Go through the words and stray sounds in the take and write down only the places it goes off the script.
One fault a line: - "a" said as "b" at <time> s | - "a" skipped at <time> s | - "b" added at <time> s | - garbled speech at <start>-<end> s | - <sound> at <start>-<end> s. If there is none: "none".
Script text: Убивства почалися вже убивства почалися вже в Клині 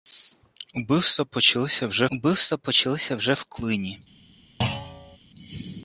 - thud at 4.6-5.2 s